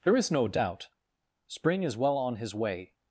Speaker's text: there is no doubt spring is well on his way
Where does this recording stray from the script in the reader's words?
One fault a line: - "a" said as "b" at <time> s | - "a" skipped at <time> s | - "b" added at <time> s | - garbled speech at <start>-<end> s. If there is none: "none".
none